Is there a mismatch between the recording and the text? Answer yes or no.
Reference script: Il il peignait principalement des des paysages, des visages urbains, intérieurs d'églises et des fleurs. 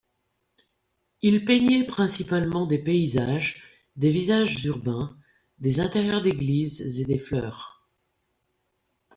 yes